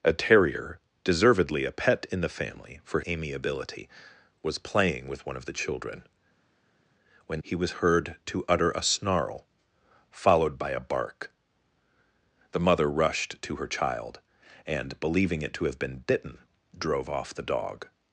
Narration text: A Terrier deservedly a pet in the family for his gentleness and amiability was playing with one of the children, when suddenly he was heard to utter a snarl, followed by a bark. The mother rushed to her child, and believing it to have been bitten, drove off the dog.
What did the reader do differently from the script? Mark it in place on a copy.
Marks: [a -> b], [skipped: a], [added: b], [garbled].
A Terrier deservedly a pet in the family for [skipped: his gentleness and] amiability was playing with one of the children, when [skipped: suddenly] he was heard to utter a snarl, followed by a bark. The mother rushed to her child, and believing it to have been bitten, drove off the dog.